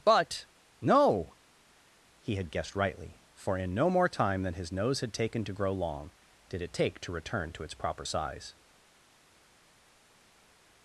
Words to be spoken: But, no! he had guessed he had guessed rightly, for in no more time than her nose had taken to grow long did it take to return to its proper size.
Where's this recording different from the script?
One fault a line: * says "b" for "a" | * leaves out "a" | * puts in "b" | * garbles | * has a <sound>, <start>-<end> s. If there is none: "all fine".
* leaves out "he had guessed"
* says "his" for "her"